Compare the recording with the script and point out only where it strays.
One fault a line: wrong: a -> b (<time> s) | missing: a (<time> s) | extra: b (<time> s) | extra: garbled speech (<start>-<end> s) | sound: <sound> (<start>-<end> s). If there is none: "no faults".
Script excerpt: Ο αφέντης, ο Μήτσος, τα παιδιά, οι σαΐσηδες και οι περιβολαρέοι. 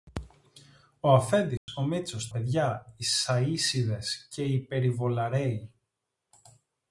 sound: dropout (1.6-1.7 s)
missing: τα (2.3 s)